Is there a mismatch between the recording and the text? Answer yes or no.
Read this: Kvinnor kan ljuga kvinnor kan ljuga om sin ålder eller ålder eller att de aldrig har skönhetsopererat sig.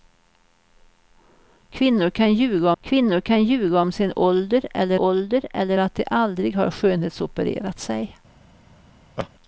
no